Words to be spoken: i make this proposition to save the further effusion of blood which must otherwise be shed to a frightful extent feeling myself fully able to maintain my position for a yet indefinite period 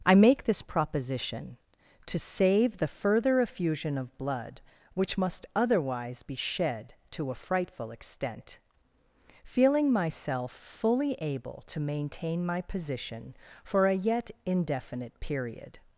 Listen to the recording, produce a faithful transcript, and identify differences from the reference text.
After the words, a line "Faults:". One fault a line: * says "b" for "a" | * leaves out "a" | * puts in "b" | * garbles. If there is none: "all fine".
i make this proposition to save the further effusion of blood which must otherwise be shed to a frightful extent feeling myself fully able to maintain my position for a yet indefinite period
Faults:
all fine